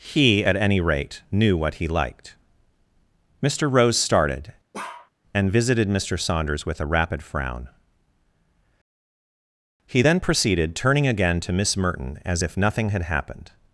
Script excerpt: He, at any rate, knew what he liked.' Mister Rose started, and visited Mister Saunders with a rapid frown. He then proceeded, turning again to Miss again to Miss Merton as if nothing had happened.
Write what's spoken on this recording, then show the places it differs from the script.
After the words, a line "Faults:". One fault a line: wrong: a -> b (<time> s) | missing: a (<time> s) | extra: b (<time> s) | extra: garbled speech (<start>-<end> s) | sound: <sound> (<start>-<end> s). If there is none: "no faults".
He, at any rate, knew what he liked.' Mister Rose started, and visited Mister Saunders with a rapid frown. He then proceeded, turning again to Miss Merton as if nothing had happened.
Faults:
sound: bark (4.7-5.1 s)
missing: again to Miss (11.7 s)